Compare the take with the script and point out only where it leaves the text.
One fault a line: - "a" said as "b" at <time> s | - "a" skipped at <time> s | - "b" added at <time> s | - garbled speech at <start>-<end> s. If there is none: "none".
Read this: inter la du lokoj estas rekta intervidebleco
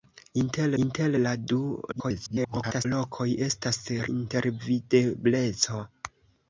- "inter" added at 0.8 s
- garbled speech at 1.9-2.9 s
- "rekta" skipped at 3.8 s